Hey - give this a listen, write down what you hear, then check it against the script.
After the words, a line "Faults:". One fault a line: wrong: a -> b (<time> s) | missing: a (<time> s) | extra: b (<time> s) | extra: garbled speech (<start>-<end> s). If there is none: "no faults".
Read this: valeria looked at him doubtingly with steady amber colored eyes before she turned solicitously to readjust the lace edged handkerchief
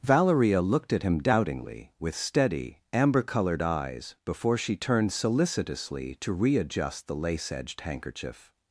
valeria looked at him doubtingly with steady amber colored eyes before she turned solicitously to readjust the lace edged handkerchief
Faults:
no faults